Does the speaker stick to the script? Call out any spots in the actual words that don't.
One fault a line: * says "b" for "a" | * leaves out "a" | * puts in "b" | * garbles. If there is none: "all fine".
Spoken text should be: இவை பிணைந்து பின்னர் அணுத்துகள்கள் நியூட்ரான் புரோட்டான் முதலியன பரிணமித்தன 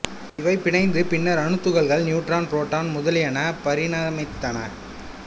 all fine